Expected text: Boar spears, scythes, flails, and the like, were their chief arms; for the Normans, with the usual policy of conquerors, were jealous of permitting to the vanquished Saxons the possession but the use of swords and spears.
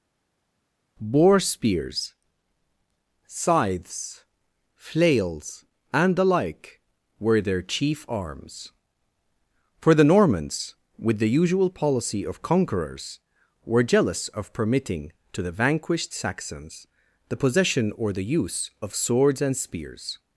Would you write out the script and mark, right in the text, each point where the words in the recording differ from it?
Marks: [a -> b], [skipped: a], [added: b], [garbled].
Boar spears, scythes, flails, and the like, were their chief arms; for the Normans, with the usual policy of conquerors, were jealous of permitting to the vanquished Saxons the possession [but -> or] the use of swords and spears.